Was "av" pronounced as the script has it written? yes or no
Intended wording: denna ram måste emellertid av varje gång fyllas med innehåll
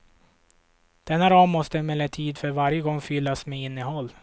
no